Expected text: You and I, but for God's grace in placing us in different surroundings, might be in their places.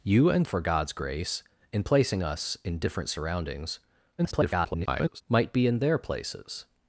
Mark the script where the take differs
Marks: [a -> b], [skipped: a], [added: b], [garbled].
You and [skipped: I, but] for God's grace in placing us in different surroundings, [garbled] might be in their places.